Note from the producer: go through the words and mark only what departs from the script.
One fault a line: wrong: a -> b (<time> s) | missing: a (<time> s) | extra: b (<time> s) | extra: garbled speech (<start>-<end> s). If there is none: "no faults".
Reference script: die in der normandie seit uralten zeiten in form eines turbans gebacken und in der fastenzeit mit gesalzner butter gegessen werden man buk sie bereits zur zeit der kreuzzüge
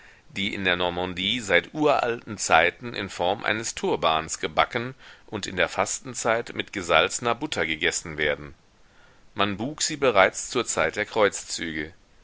no faults